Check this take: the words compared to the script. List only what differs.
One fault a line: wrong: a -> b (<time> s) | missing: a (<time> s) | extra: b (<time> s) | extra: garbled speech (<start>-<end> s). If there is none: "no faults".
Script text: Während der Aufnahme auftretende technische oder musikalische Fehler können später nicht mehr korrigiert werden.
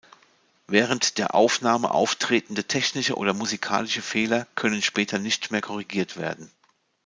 no faults